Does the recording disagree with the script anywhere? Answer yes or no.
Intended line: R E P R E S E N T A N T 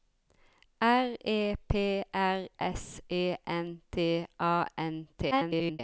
yes